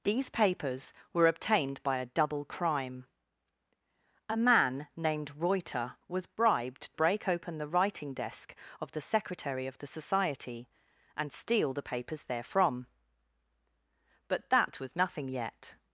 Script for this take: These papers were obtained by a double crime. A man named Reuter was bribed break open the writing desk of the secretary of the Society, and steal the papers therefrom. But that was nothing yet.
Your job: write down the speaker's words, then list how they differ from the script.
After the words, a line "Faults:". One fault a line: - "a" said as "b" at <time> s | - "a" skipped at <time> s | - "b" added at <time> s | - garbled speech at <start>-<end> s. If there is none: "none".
These papers were obtained by a double crime. A man named Reuter was bribed break open the writing desk of the secretary of the Society, and steal the papers therefrom. But that was nothing yet.
Faults:
none